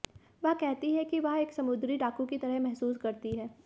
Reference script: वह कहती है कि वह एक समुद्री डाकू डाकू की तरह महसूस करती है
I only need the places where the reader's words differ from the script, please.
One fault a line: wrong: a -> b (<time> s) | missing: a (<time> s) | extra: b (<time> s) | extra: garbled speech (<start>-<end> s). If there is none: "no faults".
missing: डाकू (2.3 s)